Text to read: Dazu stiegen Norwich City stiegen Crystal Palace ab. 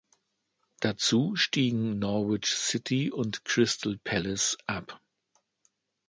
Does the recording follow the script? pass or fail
fail